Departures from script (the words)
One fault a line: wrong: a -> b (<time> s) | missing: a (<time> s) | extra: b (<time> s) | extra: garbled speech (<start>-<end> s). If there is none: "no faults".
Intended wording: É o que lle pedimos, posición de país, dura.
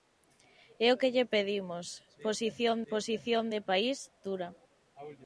extra: posición (2.9 s)